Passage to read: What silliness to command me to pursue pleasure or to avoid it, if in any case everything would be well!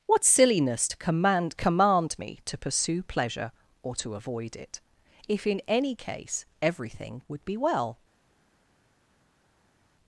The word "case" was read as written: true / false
true